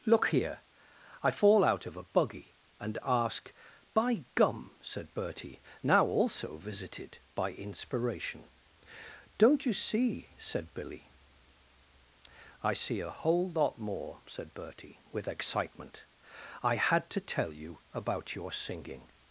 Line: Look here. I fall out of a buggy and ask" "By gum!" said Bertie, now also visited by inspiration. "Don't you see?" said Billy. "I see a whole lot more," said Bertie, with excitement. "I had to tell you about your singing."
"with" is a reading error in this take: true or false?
false